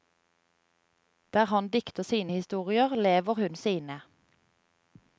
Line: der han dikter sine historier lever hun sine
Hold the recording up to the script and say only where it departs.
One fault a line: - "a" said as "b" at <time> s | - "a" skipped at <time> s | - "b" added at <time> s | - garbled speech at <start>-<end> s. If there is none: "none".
none